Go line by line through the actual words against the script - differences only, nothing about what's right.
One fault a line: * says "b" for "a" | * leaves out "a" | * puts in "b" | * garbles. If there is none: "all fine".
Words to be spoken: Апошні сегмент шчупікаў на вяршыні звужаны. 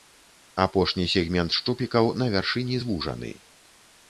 all fine